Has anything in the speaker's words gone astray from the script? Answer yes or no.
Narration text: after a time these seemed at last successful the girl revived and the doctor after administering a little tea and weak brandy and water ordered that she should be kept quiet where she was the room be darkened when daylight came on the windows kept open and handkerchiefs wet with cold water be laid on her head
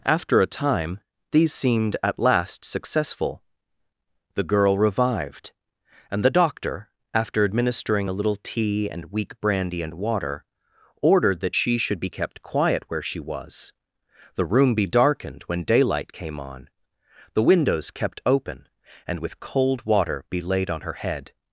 yes